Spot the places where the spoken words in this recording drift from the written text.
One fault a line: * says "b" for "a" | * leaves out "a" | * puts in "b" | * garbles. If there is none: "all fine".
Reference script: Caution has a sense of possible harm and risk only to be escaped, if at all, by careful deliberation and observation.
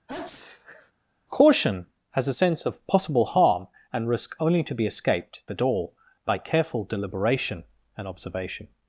* leaves out "if"